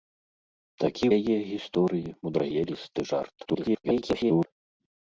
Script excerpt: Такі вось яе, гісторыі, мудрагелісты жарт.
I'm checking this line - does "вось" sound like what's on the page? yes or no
no